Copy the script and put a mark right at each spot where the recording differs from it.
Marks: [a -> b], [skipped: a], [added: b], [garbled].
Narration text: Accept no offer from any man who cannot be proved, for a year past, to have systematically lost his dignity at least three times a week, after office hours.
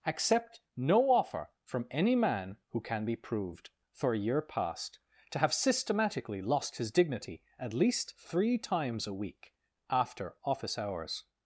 Accept no offer from any man who [cannot -> can] be proved, for a year past, to have systematically lost his dignity at least three times a week, after office hours.